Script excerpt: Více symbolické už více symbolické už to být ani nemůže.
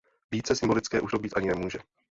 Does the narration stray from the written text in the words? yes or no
yes